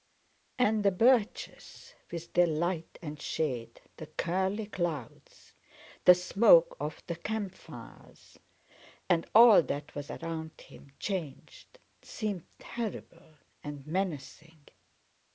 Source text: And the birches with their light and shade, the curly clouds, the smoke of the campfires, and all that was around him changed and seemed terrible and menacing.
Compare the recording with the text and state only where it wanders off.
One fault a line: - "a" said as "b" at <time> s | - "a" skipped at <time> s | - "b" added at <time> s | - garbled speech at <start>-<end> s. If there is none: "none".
- "and" skipped at 11.8 s